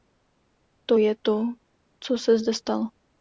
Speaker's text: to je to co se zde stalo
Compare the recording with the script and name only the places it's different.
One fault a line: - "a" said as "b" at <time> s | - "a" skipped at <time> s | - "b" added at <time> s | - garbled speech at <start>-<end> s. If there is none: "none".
none